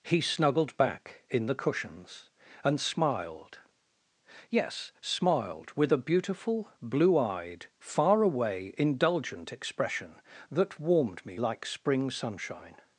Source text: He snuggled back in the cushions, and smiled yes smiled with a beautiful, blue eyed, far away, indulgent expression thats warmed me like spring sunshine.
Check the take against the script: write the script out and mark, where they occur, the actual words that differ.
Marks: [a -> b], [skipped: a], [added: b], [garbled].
He snuggled back in the cushions, and smiled yes smiled with a beautiful, blue eyed, far away, indulgent expression [thats -> that] warmed me like spring sunshine.